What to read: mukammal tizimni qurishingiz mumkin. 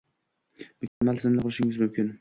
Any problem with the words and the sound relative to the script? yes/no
yes